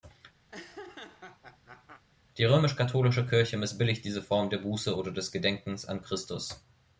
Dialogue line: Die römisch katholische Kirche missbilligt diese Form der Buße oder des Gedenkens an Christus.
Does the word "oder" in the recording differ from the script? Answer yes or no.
no